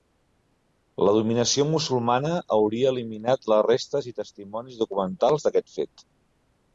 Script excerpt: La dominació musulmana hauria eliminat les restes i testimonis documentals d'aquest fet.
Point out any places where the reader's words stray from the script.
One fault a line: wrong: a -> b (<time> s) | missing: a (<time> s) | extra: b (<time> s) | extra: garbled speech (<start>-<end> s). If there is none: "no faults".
no faults